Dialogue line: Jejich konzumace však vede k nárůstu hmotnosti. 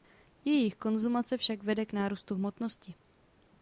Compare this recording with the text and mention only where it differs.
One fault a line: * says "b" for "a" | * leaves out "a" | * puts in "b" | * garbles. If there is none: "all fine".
all fine